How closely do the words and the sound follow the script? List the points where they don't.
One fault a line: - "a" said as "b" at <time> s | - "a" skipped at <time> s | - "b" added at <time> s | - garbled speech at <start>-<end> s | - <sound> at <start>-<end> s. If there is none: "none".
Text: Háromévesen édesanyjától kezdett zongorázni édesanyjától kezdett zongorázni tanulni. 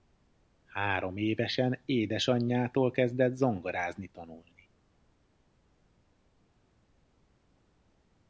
- "édesanyjától kezdett zongorázni" skipped at 4.1 s